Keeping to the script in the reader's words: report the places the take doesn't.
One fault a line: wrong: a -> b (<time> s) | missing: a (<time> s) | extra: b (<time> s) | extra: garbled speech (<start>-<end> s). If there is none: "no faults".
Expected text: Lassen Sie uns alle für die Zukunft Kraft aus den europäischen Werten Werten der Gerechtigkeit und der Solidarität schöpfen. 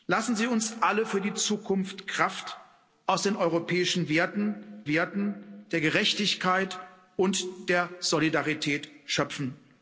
no faults